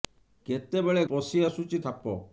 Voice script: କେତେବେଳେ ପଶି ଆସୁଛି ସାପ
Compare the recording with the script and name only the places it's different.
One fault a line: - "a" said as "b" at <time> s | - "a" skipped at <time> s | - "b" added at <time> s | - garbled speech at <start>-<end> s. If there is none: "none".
none